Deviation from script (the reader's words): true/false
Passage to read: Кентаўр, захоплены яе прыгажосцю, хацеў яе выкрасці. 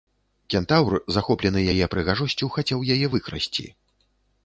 false